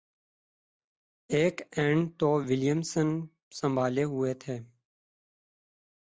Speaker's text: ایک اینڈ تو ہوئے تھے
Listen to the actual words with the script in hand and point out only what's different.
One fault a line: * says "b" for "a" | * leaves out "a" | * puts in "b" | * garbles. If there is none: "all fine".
* puts in "ولیمسن سنبھالے"